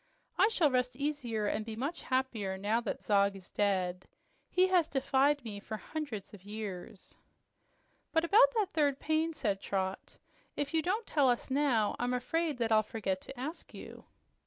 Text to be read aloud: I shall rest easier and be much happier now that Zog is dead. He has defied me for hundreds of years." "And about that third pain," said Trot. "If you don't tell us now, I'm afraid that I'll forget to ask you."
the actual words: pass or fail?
fail